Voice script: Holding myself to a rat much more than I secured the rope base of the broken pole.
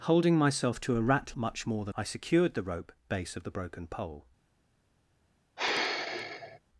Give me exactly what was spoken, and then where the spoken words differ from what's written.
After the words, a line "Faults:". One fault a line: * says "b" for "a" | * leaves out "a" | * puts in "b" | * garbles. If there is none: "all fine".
Holding myself to a rat much more than I secured the rope base of the broken pole.
Faults:
all fine